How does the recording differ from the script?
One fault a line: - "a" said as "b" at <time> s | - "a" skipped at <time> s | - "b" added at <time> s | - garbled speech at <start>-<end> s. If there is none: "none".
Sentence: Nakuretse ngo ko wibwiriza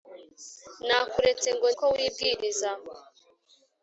none